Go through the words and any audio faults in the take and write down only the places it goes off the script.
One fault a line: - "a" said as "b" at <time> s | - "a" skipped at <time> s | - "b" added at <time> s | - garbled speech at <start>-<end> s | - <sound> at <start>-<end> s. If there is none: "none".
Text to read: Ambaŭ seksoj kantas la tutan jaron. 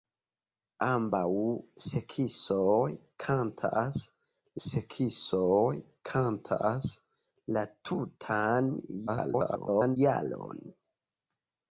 - "seksoj kantas" added at 4.7 s
- garbled speech at 9.1-10.0 s